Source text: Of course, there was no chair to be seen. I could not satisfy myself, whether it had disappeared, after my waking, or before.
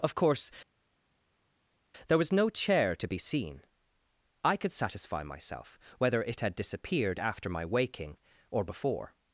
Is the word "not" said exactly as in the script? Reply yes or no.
no